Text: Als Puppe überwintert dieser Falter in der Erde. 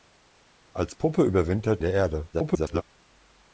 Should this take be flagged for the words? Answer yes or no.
yes